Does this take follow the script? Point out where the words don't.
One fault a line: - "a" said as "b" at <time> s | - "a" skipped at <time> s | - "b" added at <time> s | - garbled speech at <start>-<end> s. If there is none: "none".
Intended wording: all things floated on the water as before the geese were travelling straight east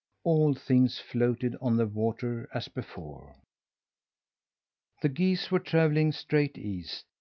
none